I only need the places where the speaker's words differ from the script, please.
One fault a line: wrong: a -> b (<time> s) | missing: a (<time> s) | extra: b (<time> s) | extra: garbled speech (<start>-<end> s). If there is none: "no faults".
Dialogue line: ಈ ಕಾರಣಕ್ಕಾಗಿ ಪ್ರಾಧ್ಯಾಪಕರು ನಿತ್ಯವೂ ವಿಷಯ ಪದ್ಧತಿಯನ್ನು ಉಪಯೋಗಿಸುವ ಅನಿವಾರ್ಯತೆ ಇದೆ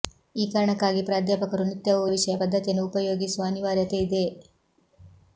no faults